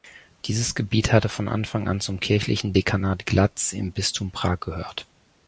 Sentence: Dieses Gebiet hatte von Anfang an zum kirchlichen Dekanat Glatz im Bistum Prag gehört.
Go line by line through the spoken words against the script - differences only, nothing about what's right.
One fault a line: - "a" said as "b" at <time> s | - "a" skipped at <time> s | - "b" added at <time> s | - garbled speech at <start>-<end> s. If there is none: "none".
none